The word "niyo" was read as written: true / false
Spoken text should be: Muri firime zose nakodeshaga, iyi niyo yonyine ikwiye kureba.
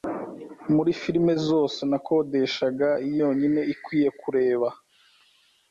false